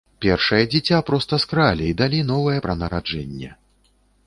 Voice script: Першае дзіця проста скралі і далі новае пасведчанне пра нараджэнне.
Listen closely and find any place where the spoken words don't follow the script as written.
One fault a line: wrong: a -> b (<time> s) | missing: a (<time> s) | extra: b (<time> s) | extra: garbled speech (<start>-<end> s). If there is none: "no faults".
missing: пасведчанне (2.6 s)